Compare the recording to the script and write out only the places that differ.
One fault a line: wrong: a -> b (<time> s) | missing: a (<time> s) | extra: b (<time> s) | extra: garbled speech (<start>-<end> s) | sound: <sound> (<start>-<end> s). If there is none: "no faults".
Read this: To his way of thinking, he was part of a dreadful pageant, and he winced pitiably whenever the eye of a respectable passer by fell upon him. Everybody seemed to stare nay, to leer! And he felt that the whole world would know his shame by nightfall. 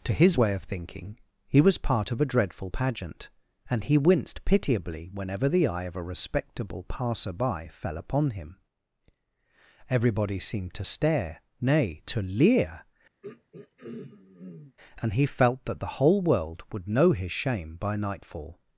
sound: throat clearing (13.2-14.8 s)